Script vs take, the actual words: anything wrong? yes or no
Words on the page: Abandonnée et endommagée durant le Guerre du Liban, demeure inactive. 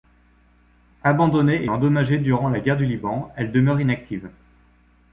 yes